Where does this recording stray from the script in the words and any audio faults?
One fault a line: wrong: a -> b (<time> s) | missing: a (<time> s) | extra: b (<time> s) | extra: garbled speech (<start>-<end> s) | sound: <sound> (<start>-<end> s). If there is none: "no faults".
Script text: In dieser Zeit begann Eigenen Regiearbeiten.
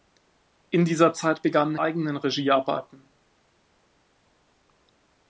no faults